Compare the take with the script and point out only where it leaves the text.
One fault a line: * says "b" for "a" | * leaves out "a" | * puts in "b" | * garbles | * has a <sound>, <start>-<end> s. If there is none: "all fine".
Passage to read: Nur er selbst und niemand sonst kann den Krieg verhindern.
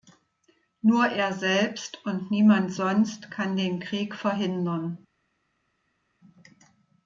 all fine